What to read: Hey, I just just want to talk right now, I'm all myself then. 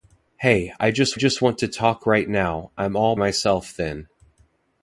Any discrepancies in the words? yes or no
no